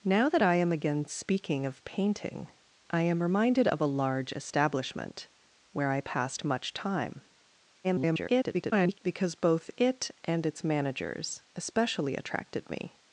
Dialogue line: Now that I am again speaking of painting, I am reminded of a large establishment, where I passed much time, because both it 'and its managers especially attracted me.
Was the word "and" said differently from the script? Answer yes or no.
no